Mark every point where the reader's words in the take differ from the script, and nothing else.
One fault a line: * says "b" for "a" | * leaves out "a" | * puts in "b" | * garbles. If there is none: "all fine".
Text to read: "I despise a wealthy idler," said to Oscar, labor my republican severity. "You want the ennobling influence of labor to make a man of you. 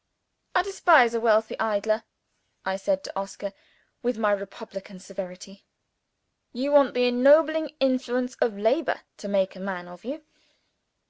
* puts in "I"
* says "with" for "labor"